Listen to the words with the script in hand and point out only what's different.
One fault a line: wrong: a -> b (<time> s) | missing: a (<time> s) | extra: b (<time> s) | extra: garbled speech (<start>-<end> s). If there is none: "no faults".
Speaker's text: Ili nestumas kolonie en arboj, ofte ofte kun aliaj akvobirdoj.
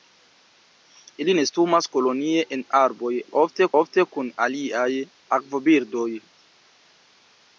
no faults